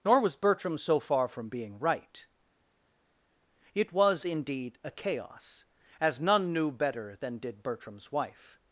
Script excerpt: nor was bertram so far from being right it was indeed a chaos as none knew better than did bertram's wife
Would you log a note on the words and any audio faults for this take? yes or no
no